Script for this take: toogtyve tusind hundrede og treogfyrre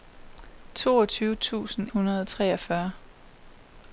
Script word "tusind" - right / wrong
right